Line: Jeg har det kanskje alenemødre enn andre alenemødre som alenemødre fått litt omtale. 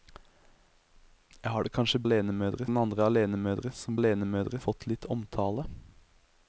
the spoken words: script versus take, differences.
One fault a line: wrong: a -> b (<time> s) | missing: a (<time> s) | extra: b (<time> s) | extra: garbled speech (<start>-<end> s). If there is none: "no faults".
no faults